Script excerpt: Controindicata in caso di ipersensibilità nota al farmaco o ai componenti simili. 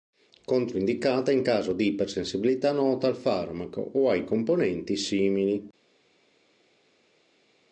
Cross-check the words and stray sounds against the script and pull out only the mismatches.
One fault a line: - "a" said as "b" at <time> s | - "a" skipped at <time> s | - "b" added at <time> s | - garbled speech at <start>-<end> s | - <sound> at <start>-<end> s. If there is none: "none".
none